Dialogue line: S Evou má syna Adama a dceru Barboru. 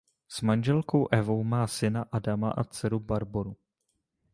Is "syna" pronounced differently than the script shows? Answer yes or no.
no